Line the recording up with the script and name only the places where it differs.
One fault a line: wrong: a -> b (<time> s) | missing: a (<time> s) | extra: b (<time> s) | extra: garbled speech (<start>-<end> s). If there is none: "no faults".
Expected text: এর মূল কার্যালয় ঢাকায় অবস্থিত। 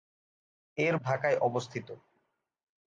missing: মূল কার্যালয় (0.9 s)